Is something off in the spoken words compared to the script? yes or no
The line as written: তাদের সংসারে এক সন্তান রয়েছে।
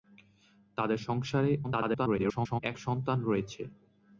yes